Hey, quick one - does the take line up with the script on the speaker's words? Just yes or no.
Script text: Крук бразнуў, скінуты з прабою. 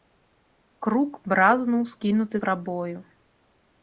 no